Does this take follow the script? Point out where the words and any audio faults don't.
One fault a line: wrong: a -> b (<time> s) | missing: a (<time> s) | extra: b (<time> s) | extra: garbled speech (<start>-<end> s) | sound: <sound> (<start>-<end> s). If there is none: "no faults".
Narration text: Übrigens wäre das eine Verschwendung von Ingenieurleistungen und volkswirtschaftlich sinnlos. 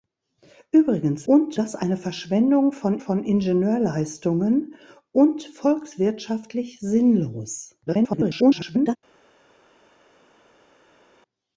wrong: wäre -> und (1.3 s)
extra: von (3.0 s)
extra: garbled speech (7.9-9.0 s)